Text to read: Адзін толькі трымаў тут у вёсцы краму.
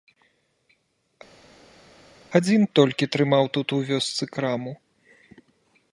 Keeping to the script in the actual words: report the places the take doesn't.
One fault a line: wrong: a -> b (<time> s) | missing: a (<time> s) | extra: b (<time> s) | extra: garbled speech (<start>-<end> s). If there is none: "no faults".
no faults